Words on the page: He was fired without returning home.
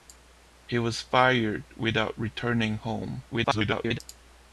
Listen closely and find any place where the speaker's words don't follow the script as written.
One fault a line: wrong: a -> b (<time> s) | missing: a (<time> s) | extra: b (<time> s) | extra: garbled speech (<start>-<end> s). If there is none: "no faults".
extra: garbled speech (3.3-4.0 s)